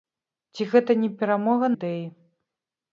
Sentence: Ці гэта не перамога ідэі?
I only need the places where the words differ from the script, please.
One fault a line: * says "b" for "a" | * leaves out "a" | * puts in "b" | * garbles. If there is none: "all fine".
all fine